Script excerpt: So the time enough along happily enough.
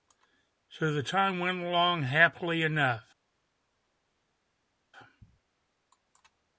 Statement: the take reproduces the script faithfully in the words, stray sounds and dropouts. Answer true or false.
false